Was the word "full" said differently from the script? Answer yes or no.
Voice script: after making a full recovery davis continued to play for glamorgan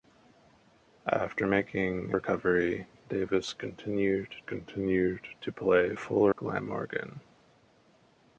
yes